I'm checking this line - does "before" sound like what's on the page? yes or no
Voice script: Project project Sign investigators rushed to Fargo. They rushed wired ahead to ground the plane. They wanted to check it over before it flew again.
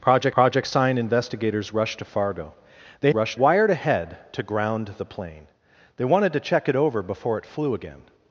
yes